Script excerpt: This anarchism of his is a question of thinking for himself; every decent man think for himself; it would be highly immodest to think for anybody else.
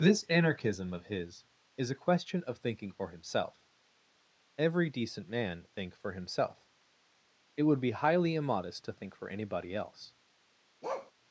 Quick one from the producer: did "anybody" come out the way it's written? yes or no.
yes